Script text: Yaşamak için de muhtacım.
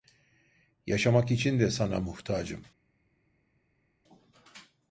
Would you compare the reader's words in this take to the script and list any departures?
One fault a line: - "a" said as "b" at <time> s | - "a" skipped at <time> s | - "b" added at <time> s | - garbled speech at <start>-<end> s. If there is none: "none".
- "sana" added at 1.7 s